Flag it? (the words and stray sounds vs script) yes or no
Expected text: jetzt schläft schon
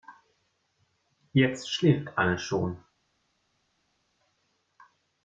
yes